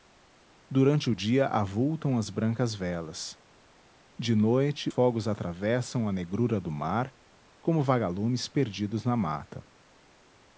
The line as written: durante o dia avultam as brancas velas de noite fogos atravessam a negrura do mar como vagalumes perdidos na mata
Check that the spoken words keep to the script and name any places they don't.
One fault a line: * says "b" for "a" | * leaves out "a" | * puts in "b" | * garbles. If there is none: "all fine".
all fine